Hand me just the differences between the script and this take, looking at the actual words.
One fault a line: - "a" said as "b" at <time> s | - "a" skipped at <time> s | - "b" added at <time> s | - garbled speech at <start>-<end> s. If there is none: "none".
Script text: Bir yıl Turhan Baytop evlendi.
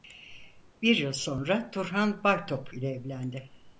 - "sonra" added at 1.1 s
- "ile" added at 2.7 s